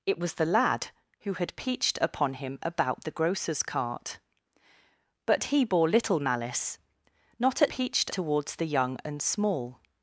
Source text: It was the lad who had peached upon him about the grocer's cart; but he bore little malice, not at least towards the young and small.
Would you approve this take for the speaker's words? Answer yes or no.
no